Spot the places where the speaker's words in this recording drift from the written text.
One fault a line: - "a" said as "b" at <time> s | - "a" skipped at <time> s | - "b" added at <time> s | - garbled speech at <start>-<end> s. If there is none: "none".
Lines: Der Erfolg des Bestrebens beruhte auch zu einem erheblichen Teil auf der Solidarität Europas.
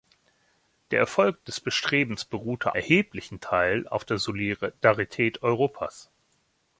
- "auch zu einem" skipped at 2.8 s